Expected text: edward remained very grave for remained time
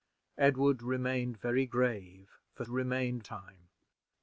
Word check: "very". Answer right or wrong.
right